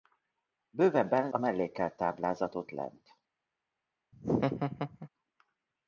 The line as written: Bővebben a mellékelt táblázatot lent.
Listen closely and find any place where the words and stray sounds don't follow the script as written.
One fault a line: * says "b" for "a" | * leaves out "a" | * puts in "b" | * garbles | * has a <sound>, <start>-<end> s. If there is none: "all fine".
* has a laugh, 4.1-5.1 s